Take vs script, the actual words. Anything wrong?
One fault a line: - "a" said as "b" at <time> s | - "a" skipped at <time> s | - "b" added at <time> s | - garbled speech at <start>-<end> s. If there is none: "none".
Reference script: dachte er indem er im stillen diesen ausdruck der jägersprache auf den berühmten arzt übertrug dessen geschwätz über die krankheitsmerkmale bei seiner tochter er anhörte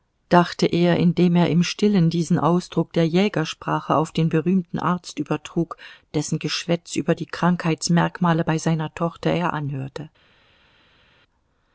none